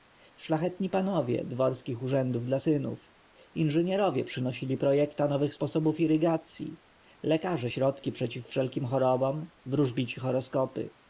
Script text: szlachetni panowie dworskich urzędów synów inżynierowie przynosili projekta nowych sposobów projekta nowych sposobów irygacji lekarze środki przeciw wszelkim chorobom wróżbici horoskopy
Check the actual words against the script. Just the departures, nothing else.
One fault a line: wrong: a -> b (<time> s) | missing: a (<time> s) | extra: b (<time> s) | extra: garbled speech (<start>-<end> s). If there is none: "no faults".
extra: dla (2.5 s)
missing: projekta nowych sposobów (6.0 s)